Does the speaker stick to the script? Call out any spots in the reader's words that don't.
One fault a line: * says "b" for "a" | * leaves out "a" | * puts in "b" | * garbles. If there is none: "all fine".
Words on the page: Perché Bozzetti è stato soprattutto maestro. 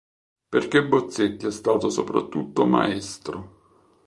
all fine